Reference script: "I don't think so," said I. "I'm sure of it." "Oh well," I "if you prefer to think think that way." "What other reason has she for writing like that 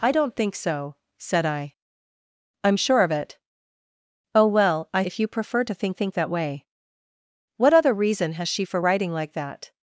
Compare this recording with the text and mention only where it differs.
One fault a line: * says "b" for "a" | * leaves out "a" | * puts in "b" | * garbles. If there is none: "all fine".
all fine